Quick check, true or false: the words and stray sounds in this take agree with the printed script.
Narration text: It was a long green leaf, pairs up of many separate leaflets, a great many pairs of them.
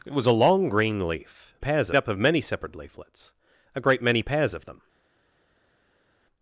true